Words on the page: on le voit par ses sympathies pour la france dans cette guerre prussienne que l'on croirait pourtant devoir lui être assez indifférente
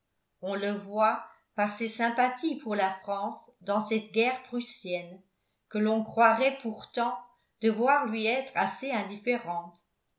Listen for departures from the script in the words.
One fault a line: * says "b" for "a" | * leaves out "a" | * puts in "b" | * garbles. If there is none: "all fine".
all fine